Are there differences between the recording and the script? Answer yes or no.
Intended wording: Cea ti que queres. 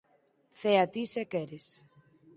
yes